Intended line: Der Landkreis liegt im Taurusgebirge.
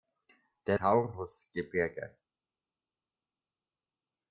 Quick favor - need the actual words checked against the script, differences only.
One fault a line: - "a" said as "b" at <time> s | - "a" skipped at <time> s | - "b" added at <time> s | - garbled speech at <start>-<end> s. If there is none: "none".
- "Landkreis liegt im" skipped at 0.8 s